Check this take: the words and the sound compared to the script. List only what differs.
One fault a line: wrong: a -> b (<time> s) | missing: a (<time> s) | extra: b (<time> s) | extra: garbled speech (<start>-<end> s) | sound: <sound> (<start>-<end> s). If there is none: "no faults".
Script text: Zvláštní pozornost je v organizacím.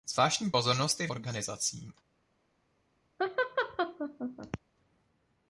sound: laugh (3.2-4.6 s)